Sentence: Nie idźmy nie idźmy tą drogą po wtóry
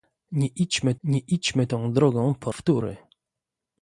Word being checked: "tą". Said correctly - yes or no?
yes